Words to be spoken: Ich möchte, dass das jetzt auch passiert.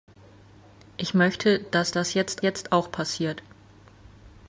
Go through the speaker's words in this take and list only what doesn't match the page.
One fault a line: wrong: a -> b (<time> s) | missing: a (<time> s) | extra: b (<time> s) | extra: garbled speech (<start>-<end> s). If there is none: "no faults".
extra: jetzt (2.4 s)